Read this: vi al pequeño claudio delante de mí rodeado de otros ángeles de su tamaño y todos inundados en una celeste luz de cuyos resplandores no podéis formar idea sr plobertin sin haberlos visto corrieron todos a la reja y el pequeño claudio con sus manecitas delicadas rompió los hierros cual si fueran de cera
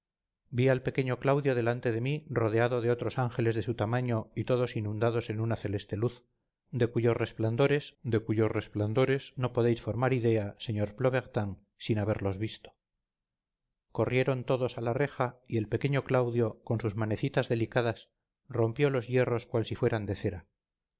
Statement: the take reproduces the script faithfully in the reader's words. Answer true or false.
false